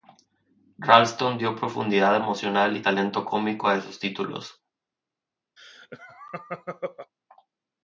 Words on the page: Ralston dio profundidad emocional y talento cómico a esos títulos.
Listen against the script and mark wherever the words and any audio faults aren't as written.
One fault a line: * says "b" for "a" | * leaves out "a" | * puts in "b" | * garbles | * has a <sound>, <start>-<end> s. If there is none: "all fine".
* has a laugh, 5.6-7.1 s